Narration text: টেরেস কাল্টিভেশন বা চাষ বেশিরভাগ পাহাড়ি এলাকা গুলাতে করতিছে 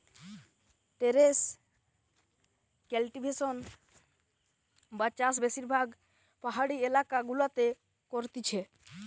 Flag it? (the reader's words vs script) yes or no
no